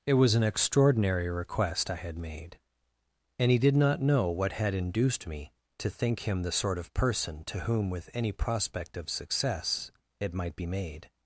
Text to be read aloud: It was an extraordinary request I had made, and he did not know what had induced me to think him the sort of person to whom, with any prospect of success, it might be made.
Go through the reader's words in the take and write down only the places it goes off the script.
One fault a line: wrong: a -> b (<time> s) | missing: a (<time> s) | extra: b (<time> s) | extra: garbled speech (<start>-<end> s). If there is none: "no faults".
no faults